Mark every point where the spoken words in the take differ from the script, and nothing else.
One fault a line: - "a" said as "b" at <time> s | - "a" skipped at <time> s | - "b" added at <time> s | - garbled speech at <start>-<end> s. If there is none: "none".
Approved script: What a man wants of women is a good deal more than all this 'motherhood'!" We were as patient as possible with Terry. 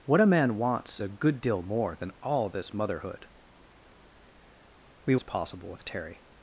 - "of women is" skipped at 1.0 s
- "were as patient" skipped at 5.2 s